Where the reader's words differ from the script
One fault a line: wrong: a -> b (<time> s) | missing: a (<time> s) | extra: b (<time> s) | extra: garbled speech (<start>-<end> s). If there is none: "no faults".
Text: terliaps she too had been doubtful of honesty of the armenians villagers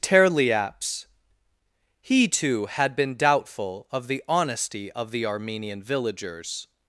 wrong: she -> he (2.0 s)
extra: the (4.1 s)
wrong: armenians -> armenian (5.3 s)